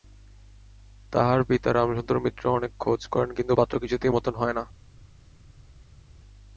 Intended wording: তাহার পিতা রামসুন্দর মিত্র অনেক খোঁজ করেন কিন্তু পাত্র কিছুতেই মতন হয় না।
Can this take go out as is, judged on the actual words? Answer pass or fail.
pass